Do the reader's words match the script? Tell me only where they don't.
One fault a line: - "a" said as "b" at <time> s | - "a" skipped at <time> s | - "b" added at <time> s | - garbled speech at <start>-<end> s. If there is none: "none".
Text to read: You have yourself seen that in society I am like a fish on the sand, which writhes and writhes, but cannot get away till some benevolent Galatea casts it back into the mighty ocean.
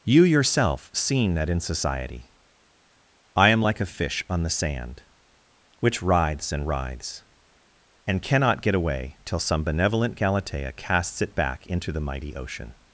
- "have" skipped at 0.2 s
- "but" said as "and" at 8.1 s